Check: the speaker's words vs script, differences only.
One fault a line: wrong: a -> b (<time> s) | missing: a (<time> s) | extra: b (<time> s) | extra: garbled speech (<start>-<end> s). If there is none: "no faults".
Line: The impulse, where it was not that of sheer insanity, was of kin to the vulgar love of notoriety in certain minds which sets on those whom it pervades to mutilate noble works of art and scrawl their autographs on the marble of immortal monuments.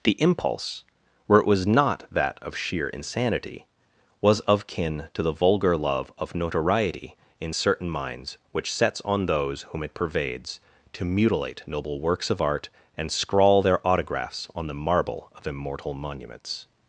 no faults